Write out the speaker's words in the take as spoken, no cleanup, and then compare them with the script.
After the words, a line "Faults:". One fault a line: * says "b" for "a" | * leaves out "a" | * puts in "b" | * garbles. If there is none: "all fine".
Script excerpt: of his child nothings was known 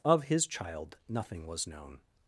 of his child nothing was known
Faults:
* says "nothing" for "nothings"